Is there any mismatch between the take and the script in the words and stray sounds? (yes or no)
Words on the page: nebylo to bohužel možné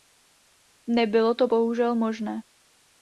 no